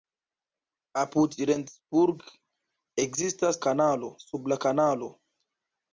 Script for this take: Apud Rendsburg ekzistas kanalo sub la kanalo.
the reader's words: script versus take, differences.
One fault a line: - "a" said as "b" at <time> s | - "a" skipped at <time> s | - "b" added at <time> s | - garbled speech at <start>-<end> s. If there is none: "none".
none